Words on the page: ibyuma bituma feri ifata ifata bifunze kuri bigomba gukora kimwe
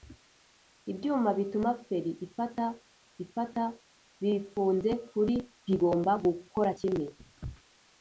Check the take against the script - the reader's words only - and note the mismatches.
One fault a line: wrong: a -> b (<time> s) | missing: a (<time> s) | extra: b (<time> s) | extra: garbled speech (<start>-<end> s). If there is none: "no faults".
no faults